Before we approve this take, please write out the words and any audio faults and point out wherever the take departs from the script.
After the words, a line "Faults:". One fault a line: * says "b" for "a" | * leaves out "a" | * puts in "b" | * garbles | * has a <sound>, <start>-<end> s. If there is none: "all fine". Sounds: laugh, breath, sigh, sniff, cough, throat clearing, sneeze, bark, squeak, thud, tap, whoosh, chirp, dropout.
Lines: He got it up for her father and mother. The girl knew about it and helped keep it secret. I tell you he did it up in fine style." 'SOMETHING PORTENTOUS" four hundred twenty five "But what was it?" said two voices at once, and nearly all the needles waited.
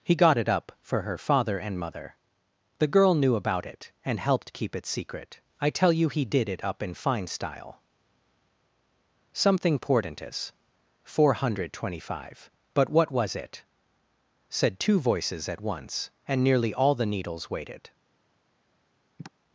He got it up for her father and mother. The girl knew about it and helped keep it secret. I tell you he did it up in fine style." 'SOMETHING PORTENTOUS" four hundred twenty five "But what was it?" said two voices at once, and nearly all the needles waited.
Faults:
* has a sigh, 19.2-19.3 s